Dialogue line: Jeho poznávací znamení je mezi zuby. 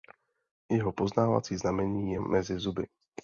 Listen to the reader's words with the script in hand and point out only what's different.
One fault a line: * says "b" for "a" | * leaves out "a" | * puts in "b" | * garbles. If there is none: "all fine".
all fine